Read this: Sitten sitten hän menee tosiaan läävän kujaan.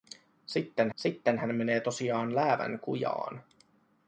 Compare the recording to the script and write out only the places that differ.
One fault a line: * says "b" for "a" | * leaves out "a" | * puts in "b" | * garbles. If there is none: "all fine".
all fine